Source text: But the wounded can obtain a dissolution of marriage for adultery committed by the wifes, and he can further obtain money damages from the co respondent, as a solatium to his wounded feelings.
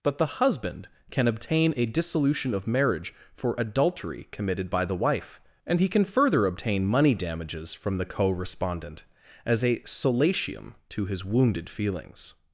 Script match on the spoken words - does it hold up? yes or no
no